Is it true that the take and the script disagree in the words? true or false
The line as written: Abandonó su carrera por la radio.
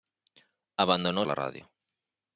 true